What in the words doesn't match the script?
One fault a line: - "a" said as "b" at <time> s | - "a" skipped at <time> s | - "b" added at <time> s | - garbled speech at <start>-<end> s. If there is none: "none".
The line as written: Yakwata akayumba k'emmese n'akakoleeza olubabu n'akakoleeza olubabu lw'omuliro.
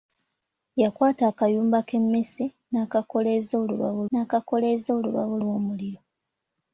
none